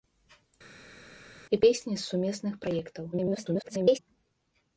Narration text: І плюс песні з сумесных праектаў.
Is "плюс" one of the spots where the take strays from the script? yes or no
yes